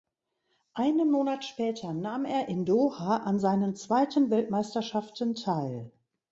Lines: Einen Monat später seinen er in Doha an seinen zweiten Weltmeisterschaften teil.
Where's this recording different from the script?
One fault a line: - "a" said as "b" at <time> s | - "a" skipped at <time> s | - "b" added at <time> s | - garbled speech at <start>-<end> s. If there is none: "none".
- "seinen" said as "nahm" at 1.9 s